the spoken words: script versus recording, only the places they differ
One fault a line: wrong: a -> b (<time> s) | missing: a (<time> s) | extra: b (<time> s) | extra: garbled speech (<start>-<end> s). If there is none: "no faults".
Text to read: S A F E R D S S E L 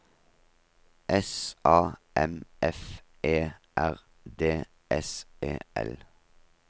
extra: M (2.1 s)
missing: S (5.2 s)